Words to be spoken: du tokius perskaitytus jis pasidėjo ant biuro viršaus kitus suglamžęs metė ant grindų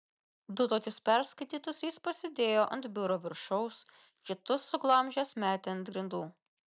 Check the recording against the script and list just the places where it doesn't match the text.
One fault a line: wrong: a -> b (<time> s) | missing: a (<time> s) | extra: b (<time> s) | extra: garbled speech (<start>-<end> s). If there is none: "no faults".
no faults